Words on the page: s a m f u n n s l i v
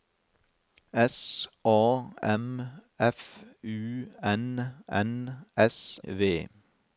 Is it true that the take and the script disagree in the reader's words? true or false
true